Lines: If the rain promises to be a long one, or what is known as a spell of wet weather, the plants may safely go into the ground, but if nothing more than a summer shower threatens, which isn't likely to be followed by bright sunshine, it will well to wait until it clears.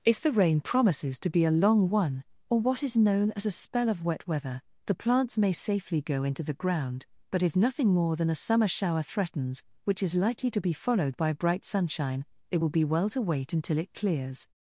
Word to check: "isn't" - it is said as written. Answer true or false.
false